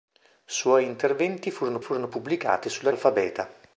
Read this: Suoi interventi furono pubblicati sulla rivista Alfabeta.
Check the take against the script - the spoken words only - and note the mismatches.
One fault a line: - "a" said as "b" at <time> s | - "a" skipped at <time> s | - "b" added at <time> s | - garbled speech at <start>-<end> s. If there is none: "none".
- "furono" added at 1.8 s
- "rivista" skipped at 2.9 s